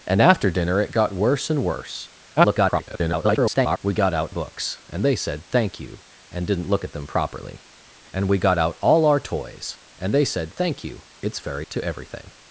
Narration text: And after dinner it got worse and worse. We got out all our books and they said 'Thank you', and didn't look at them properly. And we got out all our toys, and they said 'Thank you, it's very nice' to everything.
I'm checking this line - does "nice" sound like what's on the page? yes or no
no